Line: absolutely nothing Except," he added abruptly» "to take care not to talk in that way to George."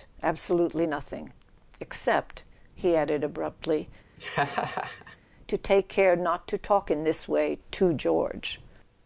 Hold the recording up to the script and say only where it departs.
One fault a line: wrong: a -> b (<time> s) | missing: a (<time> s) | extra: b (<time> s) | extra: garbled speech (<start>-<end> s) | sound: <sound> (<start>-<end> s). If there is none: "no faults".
sound: laugh (4.2-5.2 s)
wrong: that -> this (7.0 s)